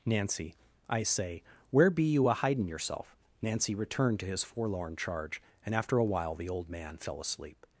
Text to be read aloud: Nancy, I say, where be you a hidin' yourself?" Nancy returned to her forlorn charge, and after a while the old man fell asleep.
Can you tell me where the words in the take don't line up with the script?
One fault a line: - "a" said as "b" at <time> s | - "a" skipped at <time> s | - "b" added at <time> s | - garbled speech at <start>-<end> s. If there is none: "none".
- "her" said as "his" at 4.2 s